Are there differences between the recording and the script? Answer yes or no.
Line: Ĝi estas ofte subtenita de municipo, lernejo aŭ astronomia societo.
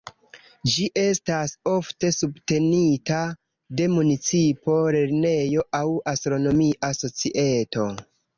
no